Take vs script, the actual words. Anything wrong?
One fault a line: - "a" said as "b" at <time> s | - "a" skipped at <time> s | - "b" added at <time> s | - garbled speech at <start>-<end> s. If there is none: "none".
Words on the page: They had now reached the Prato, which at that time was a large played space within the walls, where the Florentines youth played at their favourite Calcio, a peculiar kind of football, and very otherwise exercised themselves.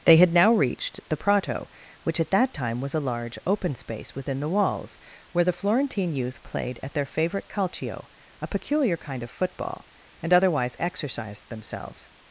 - "played" said as "open" at 3.5 s
- "Florentines" said as "Florentine" at 5.5 s
- "very" skipped at 10.3 s